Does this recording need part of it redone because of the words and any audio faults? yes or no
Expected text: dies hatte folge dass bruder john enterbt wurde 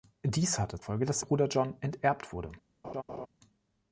yes